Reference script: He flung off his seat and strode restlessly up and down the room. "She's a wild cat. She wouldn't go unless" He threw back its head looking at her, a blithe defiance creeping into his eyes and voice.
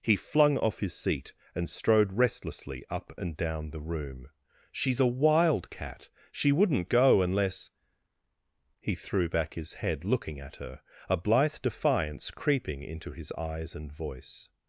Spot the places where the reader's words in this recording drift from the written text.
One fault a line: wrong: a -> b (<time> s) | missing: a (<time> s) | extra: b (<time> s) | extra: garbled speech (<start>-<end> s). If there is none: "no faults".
wrong: its -> his (9.6 s)